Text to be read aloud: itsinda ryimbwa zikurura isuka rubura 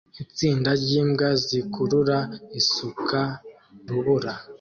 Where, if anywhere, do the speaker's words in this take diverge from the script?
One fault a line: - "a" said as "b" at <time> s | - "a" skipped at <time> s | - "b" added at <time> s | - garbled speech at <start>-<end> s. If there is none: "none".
none